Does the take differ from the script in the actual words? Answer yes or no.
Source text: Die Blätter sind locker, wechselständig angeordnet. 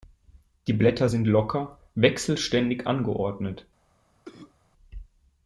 no